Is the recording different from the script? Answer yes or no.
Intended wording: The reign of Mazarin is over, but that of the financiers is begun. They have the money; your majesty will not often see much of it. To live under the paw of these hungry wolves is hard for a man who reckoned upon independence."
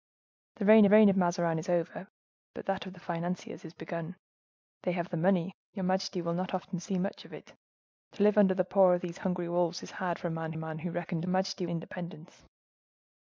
yes